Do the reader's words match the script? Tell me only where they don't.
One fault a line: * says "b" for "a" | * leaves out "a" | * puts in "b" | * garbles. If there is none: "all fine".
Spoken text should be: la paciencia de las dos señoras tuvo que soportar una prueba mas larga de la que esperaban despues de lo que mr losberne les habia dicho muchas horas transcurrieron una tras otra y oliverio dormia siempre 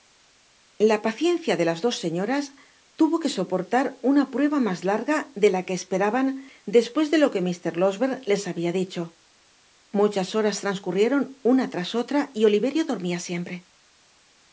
all fine